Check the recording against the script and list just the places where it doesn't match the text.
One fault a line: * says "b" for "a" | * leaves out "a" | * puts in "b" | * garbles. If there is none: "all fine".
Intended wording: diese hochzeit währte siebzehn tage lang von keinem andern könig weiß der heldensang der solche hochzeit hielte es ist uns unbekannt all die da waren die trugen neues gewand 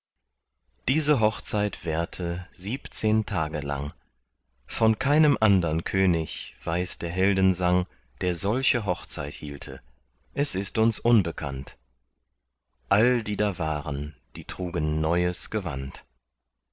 all fine